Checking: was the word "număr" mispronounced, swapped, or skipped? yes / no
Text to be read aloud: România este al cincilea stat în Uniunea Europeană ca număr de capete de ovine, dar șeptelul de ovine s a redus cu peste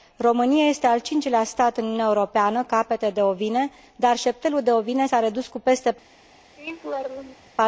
yes